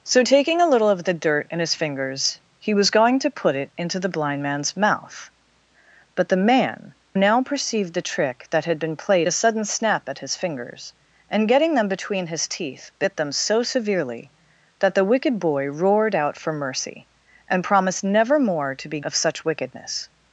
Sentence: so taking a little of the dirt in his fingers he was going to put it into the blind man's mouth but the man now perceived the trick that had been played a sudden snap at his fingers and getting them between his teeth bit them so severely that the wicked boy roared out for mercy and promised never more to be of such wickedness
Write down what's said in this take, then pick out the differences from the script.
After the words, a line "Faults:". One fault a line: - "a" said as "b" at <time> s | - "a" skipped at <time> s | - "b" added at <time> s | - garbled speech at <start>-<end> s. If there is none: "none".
so taking a little of the dirt in his fingers he was going to put it into the blind man's mouth but the man now perceived the trick that had been played a sudden snap at his fingers and getting them between his teeth bit them so severely that the wicked boy roared out for mercy and promised never more to be of such wickedness
Faults:
none